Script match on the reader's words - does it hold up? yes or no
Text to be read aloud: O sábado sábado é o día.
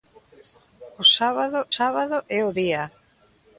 yes